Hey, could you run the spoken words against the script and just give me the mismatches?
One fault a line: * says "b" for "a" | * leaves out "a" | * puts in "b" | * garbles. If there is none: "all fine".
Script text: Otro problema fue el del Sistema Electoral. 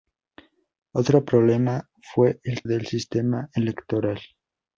all fine